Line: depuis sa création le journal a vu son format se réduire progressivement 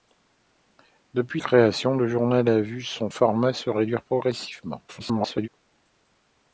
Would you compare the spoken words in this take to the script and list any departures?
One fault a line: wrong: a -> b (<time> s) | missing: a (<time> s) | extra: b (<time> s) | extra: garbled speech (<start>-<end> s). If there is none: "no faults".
missing: sa (1.4 s)
extra: garbled speech (4.9-5.5 s)